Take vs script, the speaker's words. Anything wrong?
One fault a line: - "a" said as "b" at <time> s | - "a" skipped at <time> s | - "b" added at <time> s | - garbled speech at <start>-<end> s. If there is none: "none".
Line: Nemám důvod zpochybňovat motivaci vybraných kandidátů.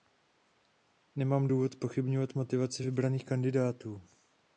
none